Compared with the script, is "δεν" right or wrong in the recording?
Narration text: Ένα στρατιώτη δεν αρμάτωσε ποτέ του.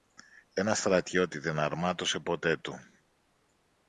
right